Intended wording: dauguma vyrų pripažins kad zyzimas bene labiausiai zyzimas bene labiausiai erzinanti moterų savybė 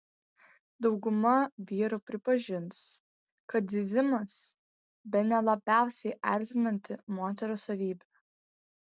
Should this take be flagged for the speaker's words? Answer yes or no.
yes